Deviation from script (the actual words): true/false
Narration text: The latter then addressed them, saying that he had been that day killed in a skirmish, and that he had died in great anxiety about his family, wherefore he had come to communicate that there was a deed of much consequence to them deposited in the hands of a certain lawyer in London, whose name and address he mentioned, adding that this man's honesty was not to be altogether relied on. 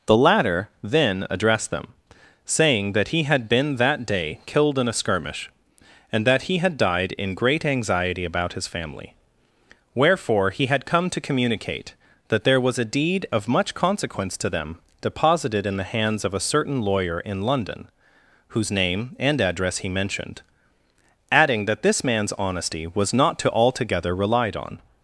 true